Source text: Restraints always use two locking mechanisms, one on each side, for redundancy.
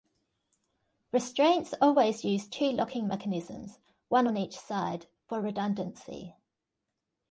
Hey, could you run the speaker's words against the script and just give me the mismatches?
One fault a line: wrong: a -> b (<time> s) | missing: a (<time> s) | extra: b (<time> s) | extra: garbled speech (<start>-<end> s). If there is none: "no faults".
no faults